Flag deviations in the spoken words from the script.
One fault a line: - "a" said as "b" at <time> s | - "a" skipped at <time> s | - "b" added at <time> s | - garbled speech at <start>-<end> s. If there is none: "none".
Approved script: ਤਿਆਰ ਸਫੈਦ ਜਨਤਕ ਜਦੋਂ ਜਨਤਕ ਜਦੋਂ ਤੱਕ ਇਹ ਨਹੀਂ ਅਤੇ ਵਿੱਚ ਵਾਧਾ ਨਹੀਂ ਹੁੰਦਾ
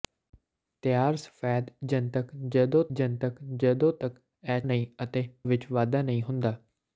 none